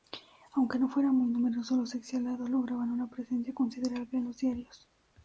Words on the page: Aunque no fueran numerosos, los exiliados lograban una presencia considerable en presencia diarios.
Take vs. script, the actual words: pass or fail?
fail